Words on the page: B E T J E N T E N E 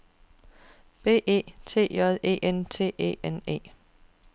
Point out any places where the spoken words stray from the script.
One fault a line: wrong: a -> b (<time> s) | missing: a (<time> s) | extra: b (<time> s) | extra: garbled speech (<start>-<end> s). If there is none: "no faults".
no faults